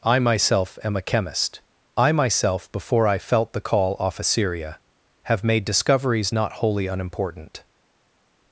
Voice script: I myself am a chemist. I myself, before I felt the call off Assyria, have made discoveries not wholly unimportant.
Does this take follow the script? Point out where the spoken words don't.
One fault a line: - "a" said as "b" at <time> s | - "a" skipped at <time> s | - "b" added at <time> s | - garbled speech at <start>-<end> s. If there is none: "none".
none